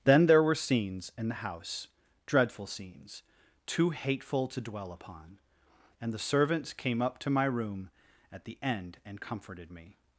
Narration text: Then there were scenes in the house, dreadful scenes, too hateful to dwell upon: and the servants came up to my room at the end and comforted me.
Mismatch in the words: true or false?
false